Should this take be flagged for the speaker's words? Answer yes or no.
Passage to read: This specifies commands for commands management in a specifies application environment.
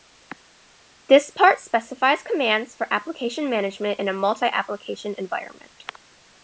yes